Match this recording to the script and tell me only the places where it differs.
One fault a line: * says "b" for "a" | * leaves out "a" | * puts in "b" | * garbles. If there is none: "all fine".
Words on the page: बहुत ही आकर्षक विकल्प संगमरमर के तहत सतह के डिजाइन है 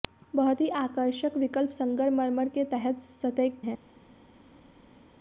* leaves out "के डिजाइन"